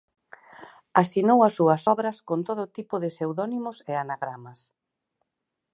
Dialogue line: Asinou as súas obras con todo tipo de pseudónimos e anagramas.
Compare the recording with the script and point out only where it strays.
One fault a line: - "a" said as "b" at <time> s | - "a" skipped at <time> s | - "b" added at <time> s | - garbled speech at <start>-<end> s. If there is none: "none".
none